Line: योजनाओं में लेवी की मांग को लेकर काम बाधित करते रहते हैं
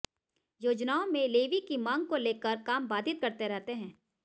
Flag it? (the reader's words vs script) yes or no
no